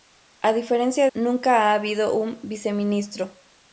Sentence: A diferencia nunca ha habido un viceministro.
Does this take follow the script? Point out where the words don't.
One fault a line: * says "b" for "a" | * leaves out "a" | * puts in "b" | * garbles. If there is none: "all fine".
all fine